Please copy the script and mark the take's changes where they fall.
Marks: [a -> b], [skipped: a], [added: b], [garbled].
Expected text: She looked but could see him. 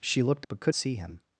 She looked but could see him.